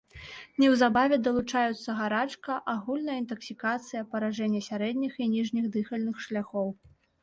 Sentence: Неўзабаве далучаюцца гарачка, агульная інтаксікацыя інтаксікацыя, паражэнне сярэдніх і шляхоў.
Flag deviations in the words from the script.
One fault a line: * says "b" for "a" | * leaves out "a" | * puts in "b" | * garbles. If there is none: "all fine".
* leaves out "інтаксікацыя"
* puts in "ніжніх дыхальных"